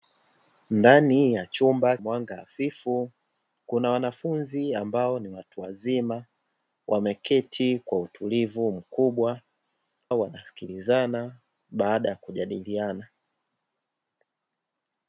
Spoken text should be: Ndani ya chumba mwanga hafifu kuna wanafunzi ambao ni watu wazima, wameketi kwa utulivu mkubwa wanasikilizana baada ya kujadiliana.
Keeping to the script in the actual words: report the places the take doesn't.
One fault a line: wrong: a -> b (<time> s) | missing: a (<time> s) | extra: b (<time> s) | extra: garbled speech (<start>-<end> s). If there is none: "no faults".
no faults